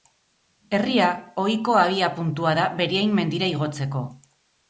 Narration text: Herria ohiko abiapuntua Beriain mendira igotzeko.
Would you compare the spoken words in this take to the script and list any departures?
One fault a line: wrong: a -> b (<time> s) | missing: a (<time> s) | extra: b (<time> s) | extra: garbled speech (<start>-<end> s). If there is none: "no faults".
extra: da (2.6 s)